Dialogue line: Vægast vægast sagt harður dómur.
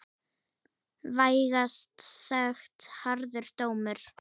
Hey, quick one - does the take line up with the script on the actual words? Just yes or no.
no